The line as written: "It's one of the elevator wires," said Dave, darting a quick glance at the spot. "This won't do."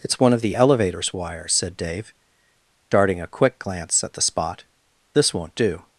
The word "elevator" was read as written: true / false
false